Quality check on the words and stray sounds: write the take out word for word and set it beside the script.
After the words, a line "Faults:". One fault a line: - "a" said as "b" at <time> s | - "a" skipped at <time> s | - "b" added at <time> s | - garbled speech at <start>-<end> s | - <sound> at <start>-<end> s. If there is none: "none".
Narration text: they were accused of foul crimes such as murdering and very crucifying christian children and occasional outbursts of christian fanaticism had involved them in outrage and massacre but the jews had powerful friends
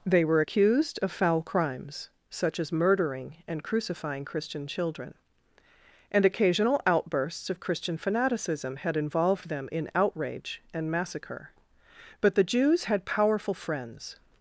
they were accused of foul crimes such as murdering and crucifying christian children and occasional outbursts of christian fanaticism had involved them in outrage and massacre but the jews had powerful friends
Faults:
- "very" skipped at 3.6 s